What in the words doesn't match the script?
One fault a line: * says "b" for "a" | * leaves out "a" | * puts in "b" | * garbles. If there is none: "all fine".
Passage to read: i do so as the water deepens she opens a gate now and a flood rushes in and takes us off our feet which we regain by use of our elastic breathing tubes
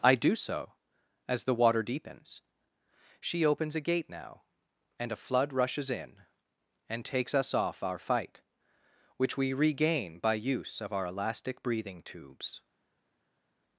* says "fight" for "feet"